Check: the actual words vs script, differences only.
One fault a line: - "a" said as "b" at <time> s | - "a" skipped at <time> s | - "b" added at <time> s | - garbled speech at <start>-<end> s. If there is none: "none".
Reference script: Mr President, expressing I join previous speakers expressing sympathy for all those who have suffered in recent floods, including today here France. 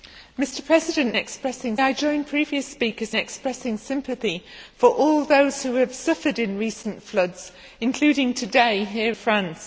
none